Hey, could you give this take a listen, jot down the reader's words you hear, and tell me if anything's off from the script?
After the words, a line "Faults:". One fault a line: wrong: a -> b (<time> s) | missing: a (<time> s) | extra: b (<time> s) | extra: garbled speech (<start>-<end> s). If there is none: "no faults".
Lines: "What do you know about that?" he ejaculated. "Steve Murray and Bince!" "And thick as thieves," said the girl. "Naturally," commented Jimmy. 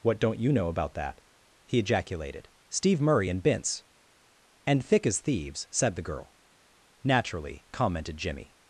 "What don't you know about that?" he ejaculated. "Steve Murray and Bince!" "And thick as thieves," said the girl. "Naturally," commented Jimmy.
Faults:
wrong: do -> don't (0.2 s)